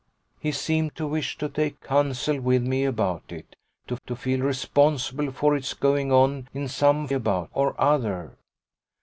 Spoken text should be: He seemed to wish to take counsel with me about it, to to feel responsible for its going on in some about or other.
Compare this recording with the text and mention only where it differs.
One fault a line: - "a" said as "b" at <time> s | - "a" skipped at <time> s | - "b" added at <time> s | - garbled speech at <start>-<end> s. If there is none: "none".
none